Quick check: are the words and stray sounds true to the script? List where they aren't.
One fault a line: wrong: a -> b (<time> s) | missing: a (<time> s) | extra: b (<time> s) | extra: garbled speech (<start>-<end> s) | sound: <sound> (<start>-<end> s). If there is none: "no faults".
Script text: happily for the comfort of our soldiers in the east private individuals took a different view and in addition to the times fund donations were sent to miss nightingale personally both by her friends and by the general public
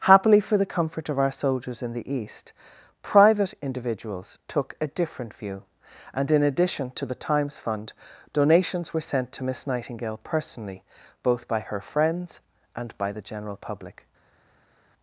no faults